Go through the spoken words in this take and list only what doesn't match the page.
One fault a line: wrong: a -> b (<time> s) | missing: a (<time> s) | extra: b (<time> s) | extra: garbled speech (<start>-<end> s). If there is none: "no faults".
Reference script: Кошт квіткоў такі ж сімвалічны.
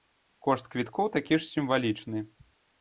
no faults